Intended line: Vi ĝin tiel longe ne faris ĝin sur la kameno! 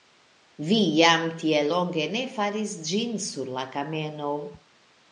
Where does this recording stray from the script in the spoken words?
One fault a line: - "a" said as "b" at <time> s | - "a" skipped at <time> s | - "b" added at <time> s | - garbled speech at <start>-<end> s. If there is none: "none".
- "ĝin" said as "jam" at 1.0 s